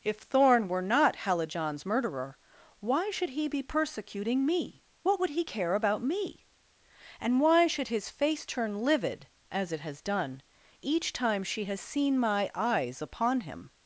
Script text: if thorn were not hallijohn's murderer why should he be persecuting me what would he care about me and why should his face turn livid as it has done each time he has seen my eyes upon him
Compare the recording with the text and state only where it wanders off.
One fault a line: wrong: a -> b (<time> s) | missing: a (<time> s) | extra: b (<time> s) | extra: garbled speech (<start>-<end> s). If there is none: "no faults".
wrong: he -> she (11.4 s)